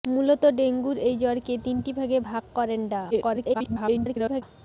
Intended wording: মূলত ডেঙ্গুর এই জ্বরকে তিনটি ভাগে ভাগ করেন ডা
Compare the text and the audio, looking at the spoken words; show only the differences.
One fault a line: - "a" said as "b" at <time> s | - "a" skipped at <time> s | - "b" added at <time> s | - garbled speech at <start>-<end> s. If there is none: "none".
- garbled speech at 3.1-4.4 s